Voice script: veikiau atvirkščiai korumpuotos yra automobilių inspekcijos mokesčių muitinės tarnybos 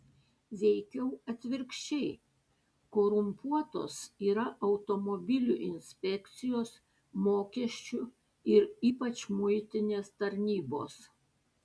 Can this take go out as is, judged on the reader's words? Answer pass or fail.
fail